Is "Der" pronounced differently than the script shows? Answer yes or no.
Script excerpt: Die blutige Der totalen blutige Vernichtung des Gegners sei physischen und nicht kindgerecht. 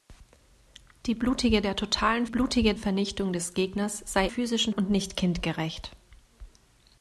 no